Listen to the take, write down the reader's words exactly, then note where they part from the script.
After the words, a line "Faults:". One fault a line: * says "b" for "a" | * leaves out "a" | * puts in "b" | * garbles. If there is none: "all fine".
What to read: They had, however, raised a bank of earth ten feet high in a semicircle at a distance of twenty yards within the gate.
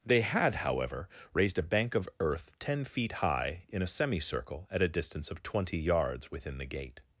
They had, however, raised a bank of earth ten feet high in a semicircle at a distance of twenty yards within the gate.
Faults:
all fine